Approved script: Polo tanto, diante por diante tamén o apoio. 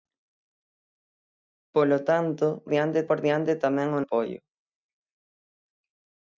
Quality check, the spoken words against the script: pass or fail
pass